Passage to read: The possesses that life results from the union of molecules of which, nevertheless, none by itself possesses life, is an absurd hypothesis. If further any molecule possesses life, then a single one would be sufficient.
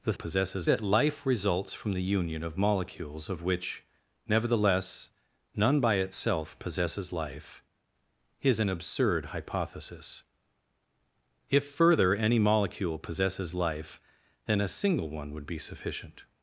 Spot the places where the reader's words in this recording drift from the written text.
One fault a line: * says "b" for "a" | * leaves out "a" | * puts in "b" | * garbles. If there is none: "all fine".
all fine